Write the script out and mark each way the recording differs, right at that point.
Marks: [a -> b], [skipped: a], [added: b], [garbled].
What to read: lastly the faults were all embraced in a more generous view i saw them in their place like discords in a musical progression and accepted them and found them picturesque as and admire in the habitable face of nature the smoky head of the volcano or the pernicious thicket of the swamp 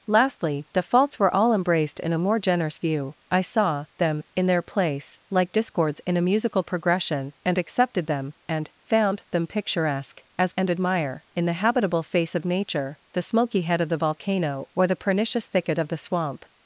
lastly the faults were all embraced in a more generous view i saw them in their place like discords in a musical progression and accepted them and found them picturesque as and admire in the habitable face of nature the smoky head of the volcano or the pernicious thicket of the swamp